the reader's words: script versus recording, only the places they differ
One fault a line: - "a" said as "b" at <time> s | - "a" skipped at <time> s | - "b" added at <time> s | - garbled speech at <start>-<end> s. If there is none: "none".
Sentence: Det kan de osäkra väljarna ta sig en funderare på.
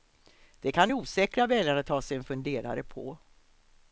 none